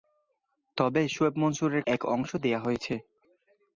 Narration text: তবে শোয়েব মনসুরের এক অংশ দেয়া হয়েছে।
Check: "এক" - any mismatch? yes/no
no